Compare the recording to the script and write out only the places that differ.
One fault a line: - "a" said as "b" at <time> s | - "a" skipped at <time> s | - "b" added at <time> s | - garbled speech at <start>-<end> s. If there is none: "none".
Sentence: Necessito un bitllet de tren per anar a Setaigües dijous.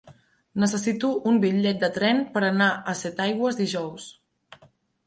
none